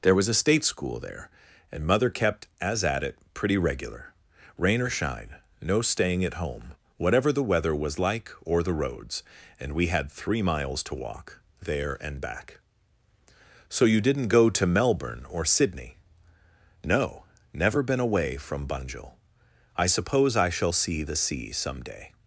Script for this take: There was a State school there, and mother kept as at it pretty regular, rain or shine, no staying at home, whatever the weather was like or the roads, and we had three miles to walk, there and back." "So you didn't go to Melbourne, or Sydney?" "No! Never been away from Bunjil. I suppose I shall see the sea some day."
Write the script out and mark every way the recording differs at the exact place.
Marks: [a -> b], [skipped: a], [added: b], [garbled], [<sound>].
There was a State school there, and mother kept as at it pretty regular, rain or shine, no staying at home, whatever the weather was like or the roads, and we had three miles to walk, there and back." "So you didn't go to Melbourne, or Sydney?" "No! Never been away from Bunjil. I suppose I shall see the sea some day."